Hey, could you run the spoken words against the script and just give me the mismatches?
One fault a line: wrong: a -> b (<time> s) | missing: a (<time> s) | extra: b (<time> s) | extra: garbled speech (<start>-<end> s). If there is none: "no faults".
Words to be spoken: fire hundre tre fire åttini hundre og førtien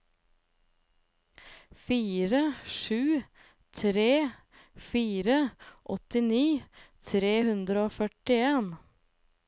wrong: hundre -> sju (2.6 s)
extra: tre (7.1 s)